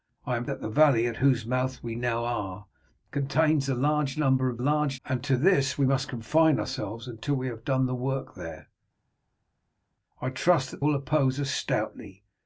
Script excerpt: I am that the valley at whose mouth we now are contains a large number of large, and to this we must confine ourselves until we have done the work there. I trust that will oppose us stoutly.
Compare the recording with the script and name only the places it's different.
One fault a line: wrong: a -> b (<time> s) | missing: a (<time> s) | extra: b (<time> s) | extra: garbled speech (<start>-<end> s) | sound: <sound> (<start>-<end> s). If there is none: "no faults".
no faults